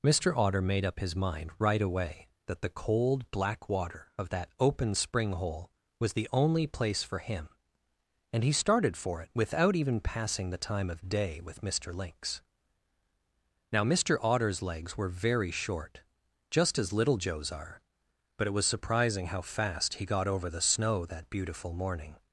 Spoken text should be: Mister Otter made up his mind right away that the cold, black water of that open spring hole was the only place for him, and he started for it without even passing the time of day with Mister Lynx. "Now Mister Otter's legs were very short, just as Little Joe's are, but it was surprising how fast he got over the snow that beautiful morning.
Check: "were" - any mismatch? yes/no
no